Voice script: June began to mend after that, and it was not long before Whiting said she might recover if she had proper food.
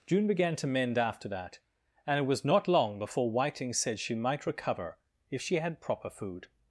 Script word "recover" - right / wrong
right